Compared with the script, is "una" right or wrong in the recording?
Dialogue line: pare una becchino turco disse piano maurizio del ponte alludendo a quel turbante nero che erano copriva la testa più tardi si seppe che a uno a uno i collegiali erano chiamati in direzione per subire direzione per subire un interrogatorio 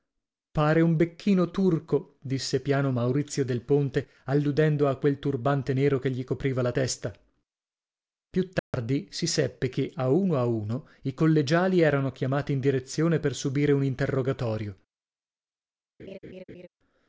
wrong